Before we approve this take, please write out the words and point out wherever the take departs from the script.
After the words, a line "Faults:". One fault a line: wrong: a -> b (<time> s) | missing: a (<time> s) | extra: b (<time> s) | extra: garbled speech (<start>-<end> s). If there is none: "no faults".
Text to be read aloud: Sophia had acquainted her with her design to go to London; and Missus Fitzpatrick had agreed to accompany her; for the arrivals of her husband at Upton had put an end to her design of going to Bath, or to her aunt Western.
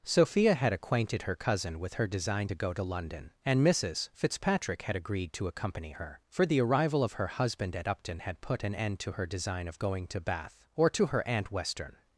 Sophia had acquainted her cousin with her design to go to London; and Missus Fitzpatrick had agreed to accompany her; for the arrival of her husband at Upton had put an end to her design of going to Bath, or to her aunt Western.
Faults:
extra: cousin (1.4 s)
wrong: arrivals -> arrival (6.6 s)